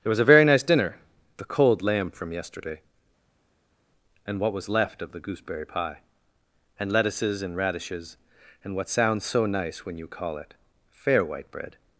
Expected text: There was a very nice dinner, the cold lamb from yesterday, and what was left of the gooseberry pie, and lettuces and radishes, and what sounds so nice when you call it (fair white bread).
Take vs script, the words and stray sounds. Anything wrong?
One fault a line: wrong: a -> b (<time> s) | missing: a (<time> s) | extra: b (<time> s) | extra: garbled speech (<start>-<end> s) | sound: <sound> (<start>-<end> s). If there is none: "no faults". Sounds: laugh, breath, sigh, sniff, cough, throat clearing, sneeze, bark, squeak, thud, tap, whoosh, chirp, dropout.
no faults